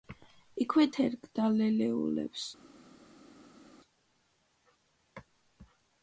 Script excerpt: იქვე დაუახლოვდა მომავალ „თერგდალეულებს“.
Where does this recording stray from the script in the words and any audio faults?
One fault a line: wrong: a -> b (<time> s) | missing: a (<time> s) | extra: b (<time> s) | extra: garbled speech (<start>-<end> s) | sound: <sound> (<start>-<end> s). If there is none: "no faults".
missing: დაუახლოვდა მომავალ (0.8 s)